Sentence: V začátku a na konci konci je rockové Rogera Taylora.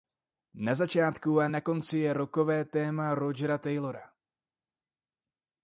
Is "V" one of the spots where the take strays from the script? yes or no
yes